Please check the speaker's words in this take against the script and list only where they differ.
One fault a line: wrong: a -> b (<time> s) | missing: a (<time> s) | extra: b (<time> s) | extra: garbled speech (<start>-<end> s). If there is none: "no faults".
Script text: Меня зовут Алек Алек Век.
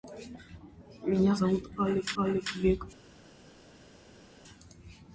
no faults